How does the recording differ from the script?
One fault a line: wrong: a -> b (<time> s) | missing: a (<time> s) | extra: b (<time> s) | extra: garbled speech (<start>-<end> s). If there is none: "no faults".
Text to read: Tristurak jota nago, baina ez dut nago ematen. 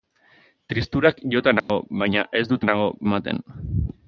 no faults